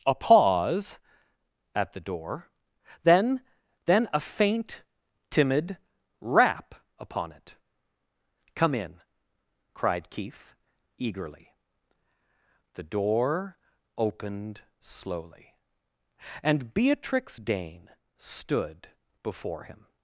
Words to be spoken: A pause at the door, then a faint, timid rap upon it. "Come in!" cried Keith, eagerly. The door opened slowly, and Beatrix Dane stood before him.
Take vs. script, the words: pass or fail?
fail